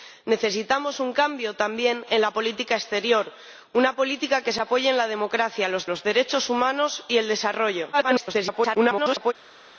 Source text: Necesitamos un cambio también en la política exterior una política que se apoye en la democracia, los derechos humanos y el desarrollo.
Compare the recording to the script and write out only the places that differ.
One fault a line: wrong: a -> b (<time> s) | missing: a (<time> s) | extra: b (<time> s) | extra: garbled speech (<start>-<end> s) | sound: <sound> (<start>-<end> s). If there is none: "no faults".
extra: los (5.8 s)
extra: garbled speech (7.9-9.3 s)